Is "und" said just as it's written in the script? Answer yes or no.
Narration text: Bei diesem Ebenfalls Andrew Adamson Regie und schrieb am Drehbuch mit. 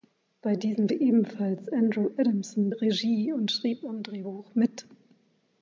yes